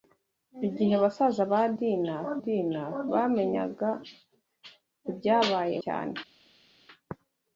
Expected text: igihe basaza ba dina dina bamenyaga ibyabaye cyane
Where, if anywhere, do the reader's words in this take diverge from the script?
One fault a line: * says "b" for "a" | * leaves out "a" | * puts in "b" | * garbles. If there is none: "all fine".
all fine